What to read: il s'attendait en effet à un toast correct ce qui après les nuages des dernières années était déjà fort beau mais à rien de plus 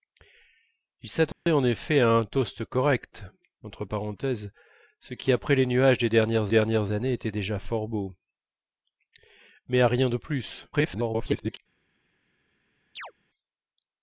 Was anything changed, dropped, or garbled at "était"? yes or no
no